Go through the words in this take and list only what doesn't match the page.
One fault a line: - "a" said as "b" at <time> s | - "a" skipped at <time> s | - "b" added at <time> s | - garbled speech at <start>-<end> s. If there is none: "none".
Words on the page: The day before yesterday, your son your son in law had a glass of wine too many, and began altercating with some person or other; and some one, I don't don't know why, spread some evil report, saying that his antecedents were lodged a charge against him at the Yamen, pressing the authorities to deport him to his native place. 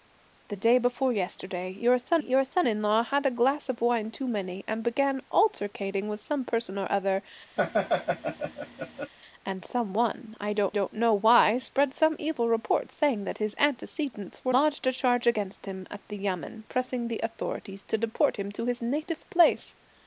none